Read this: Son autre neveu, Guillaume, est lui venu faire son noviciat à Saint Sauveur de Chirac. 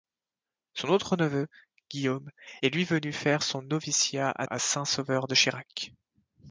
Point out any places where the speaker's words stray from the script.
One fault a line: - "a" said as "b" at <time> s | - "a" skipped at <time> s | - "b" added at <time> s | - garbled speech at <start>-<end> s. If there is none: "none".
- "à" added at 4.4 s